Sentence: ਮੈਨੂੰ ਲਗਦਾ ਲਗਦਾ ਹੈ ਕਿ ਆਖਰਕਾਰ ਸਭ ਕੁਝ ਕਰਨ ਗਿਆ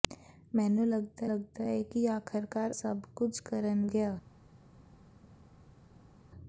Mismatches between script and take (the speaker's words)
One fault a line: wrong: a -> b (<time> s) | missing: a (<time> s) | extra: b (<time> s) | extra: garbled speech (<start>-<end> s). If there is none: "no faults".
no faults